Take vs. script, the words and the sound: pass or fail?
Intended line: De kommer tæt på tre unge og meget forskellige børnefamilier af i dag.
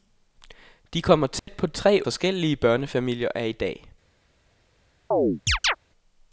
fail